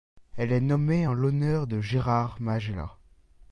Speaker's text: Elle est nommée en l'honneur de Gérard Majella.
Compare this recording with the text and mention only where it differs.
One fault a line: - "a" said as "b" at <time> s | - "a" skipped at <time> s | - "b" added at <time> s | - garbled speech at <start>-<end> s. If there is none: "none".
none